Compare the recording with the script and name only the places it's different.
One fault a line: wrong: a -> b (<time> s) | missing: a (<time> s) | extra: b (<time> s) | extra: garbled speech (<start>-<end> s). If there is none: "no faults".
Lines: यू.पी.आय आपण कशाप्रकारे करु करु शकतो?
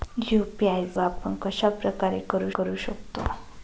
no faults